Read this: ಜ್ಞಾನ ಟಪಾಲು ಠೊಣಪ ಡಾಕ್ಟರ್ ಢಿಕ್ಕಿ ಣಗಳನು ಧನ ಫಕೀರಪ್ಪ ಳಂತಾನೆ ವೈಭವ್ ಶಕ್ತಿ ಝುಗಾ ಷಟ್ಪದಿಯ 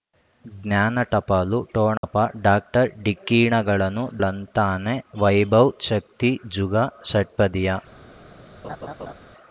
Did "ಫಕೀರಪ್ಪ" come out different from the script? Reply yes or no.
yes